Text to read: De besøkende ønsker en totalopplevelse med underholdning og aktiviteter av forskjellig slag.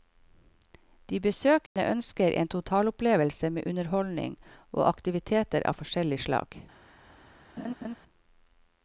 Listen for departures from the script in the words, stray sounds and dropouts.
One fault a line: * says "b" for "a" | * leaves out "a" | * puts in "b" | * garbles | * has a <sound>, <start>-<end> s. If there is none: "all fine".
* has a dropout, 1.7-1.8 s
* has a laugh, 7.6-8.0 s